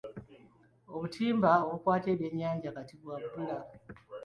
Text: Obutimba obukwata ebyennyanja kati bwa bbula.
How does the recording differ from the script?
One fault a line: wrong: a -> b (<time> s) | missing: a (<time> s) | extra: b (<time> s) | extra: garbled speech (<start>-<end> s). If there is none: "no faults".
no faults